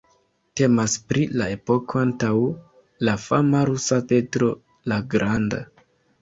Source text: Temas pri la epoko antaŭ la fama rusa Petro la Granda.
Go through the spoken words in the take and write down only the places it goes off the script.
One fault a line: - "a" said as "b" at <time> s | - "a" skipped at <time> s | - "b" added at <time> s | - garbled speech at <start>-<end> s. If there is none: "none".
none